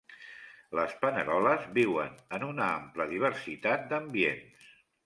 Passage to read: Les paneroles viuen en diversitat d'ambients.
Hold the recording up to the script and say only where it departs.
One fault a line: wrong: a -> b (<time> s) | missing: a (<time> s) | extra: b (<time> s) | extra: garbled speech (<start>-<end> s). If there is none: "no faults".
extra: una ampla (2.5 s)